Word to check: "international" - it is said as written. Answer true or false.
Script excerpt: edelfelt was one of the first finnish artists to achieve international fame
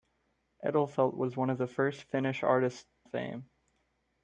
false